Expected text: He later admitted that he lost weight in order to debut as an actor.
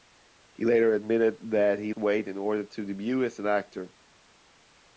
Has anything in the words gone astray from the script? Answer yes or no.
yes